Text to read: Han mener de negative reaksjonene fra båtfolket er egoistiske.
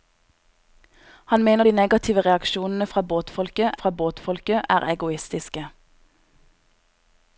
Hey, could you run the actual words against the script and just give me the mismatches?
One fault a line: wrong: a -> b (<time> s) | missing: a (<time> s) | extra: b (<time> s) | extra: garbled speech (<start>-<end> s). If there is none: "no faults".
extra: fra båtfolket (3.7 s)